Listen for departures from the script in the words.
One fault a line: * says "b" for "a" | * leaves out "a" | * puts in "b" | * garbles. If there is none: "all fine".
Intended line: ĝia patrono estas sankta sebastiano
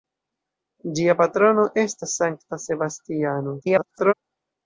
* garbles